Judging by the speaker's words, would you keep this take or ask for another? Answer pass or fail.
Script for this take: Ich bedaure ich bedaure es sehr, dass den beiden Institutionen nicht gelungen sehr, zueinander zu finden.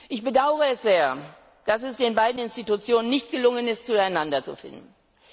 fail